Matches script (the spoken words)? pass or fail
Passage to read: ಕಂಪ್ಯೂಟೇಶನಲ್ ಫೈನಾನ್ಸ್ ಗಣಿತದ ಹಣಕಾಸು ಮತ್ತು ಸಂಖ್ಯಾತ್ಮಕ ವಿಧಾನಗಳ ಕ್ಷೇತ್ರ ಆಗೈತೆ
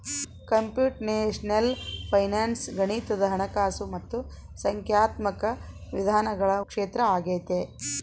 pass